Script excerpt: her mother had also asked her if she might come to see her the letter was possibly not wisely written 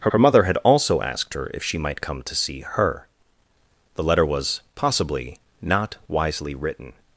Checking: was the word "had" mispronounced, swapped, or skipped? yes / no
no